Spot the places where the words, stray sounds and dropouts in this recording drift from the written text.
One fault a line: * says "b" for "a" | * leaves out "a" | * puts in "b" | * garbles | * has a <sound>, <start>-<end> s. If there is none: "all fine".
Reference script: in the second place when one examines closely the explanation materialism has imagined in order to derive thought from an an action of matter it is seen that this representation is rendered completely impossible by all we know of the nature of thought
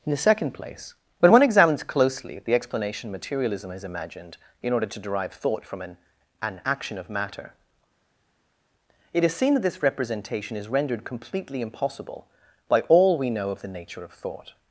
all fine